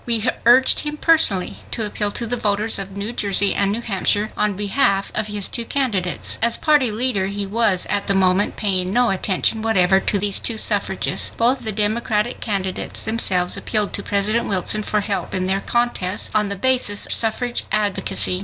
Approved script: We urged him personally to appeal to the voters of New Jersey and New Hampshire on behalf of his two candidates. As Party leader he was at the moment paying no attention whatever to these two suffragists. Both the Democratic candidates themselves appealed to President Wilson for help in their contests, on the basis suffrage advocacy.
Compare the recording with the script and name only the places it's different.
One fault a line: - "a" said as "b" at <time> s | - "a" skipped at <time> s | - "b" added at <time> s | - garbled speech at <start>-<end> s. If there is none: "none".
none